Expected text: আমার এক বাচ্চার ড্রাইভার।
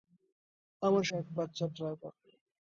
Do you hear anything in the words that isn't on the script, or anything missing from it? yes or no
no